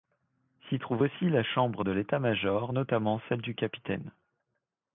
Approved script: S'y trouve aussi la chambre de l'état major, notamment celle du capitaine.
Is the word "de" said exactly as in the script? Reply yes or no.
yes